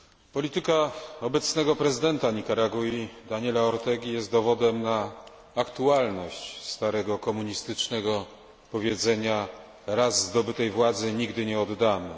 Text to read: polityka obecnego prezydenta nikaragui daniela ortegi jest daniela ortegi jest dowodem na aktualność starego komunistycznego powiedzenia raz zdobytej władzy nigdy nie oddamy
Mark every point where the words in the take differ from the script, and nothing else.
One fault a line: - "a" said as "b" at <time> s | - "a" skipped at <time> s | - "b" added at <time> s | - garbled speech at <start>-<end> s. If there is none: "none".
- "daniela ortegi jest" skipped at 4.3 s